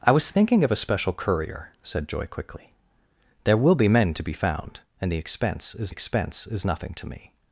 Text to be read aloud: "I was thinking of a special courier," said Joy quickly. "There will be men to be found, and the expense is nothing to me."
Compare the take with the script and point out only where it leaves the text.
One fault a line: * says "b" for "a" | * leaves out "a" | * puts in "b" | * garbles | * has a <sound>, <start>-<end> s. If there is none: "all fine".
* puts in "expense is"